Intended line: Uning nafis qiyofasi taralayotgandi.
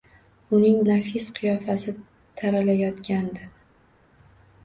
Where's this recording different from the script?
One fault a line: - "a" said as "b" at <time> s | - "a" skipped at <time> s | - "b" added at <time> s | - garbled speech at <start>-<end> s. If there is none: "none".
none